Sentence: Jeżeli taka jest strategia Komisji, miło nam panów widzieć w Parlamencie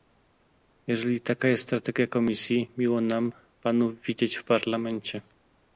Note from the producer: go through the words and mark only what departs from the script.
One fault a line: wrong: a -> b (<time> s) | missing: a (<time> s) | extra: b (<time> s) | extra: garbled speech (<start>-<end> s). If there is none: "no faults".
no faults